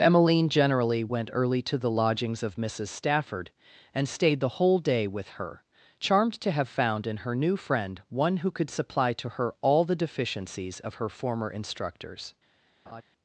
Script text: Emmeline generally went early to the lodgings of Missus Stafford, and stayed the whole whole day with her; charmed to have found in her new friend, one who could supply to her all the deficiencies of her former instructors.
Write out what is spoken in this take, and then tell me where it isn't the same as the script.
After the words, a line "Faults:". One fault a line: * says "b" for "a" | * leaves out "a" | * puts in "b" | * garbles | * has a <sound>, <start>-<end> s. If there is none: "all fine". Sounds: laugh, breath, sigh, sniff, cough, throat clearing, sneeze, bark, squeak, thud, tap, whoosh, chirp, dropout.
Emmeline generally went early to the lodgings of Missus Stafford, and stayed the whole day with her; charmed to have found in her new friend, one who could supply to her all the deficiencies of her former instructors.
Faults:
* leaves out "whole"
* has a laugh, 12.9-13.0 s